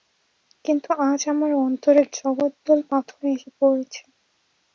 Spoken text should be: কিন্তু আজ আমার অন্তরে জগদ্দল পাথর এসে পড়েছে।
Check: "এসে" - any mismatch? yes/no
no